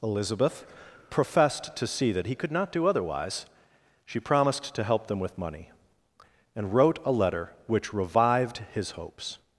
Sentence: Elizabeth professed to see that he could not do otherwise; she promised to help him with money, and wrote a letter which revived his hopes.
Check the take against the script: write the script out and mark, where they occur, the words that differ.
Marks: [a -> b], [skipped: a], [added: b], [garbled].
Elizabeth professed to see that he could not do otherwise; she promised to help [him -> them] with money, and wrote a letter which revived his hopes.